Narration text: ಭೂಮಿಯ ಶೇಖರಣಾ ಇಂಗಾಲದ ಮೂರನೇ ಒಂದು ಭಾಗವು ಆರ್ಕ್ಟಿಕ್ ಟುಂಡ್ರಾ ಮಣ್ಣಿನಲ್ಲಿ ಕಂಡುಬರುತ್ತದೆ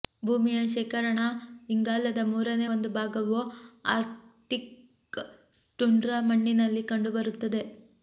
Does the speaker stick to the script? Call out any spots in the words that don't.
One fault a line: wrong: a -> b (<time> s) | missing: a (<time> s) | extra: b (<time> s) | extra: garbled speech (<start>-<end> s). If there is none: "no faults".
no faults